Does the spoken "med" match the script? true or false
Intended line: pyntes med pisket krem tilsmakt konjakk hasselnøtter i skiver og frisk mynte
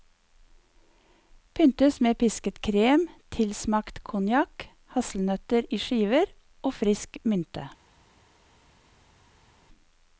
true